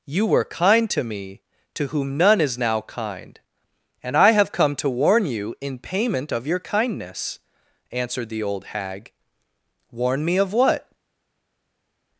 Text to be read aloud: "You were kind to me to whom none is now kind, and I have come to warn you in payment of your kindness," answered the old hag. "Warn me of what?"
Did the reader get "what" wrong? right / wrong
right